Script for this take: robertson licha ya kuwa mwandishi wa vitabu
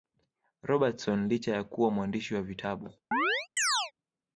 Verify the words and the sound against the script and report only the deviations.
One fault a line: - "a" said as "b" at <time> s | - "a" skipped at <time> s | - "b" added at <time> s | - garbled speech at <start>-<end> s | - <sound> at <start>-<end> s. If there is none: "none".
- chirp at 3.1-3.9 s